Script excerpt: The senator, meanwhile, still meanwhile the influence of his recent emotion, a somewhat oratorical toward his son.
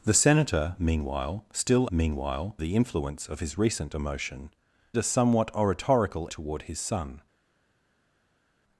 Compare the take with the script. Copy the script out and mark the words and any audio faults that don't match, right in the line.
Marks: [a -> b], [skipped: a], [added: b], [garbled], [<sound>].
The senator, meanwhile, still meanwhile the influence of his recent emotion, a somewhat oratorical toward his son.